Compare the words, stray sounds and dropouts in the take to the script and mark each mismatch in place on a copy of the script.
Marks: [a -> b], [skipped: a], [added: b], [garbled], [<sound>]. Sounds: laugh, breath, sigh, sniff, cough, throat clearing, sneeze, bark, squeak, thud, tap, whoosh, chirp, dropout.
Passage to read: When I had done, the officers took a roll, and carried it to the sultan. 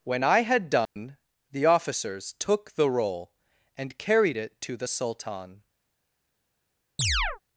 When I had done, [dropout] the officers took [a -> the] roll, and carried it to the sultan. [chirp]